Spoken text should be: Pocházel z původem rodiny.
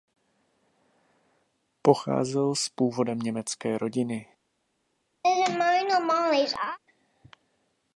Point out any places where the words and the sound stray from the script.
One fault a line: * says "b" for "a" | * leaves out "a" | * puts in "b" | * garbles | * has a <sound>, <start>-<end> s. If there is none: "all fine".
* puts in "německé"
* has a laugh, 5.2-6.8 s